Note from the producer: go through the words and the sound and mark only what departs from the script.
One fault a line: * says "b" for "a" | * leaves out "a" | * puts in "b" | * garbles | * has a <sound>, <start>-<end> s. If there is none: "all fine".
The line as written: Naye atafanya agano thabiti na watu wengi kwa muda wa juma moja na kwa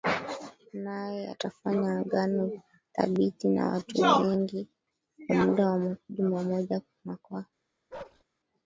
* has a bark, 7.9-8.2 s